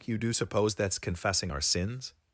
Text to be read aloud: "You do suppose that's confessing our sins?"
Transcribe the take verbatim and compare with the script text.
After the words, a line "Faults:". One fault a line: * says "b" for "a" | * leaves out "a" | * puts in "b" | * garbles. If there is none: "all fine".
"You do suppose that's confessing our sins?"
Faults:
all fine